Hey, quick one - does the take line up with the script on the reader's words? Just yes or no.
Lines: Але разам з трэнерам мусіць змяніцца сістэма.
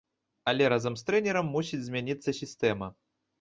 yes